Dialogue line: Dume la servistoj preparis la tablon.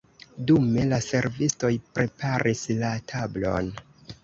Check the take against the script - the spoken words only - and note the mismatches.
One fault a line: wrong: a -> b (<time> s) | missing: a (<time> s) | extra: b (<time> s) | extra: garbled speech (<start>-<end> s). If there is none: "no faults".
no faults